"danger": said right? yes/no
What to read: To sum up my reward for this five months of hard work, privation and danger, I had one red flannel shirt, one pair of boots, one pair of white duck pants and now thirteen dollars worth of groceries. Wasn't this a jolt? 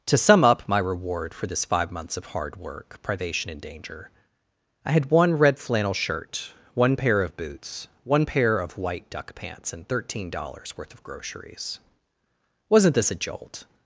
yes